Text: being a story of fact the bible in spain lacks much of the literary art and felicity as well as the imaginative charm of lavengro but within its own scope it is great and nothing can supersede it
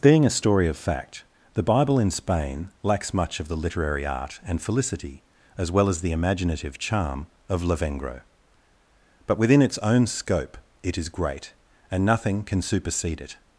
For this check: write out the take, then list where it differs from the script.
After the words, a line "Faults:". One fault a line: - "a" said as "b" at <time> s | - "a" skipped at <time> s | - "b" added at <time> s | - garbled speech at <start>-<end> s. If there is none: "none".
being a story of fact the bible in spain lacks much of the literary art and felicity as well as the imaginative charm of lavengro but within its own scope it is great and nothing can supersede it
Faults:
none